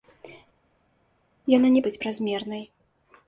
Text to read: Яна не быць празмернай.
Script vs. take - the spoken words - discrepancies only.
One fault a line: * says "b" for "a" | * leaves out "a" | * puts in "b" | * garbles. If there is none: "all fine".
all fine